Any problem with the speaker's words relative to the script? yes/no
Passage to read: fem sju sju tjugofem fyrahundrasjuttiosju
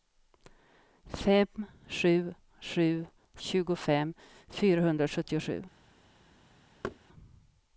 no